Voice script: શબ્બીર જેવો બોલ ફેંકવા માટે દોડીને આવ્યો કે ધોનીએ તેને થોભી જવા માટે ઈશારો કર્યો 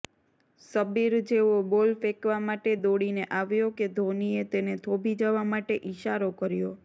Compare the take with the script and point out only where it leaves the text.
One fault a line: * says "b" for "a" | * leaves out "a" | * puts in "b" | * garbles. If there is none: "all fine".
all fine